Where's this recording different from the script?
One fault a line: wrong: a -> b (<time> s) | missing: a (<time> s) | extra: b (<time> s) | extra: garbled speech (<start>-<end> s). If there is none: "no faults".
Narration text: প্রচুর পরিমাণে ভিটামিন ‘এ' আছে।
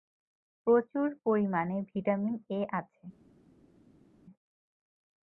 no faults